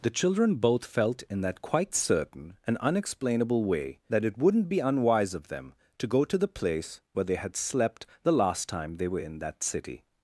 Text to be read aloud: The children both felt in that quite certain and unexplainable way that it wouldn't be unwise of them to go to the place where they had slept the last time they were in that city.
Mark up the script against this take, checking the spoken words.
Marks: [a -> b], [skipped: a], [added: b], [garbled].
The children both felt in that quite certain and unexplainable way that it wouldn't be unwise of them to go to the place where they had slept the last time they were in that city.